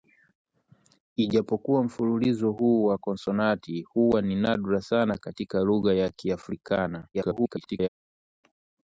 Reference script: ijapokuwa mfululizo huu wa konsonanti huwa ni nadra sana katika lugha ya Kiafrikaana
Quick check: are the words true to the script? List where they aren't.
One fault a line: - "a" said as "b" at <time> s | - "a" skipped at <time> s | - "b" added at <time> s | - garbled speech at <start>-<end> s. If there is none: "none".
- garbled speech at 7.1-7.9 s